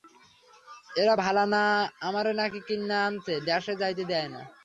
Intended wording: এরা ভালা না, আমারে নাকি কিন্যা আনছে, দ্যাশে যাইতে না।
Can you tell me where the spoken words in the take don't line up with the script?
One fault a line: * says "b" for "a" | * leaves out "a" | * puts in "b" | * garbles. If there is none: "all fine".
* puts in "দেয়"